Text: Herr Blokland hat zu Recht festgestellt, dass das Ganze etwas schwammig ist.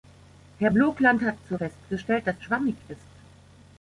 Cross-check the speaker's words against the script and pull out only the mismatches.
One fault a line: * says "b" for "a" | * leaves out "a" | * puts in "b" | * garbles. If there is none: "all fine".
* leaves out "Recht"
* leaves out "das Ganze etwas"